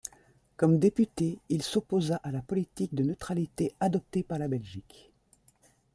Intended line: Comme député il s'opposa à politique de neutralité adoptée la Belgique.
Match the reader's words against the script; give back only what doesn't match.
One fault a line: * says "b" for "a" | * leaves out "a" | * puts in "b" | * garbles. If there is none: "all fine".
* puts in "la"
* puts in "par"